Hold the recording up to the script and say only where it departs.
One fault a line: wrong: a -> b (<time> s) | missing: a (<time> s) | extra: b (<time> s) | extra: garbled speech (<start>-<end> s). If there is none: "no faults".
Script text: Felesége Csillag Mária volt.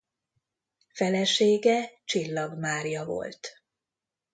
no faults